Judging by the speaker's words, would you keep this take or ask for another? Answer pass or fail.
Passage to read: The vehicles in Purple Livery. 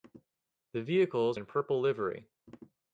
pass